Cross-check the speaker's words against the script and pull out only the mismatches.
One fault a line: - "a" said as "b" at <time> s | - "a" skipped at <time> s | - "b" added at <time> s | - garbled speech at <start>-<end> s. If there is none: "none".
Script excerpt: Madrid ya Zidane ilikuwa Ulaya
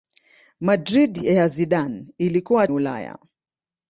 none